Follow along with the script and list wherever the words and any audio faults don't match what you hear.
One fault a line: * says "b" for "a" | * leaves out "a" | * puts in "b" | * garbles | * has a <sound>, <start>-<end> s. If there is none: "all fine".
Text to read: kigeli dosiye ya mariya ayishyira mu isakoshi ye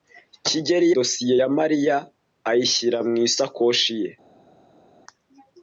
all fine